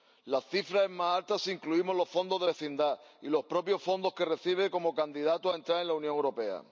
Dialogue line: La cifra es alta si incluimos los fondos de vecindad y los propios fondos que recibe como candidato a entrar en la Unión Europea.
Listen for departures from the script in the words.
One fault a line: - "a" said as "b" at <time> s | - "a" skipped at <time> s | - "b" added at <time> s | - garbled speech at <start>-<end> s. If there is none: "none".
- "más" added at 0.9 s